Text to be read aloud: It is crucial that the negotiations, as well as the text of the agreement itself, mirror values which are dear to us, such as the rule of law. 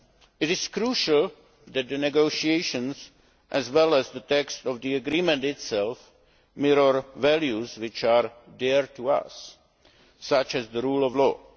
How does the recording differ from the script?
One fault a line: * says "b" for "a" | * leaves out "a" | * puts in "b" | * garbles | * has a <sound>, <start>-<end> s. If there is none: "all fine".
all fine